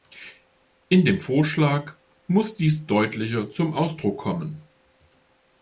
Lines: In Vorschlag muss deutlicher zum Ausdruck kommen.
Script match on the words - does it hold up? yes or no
no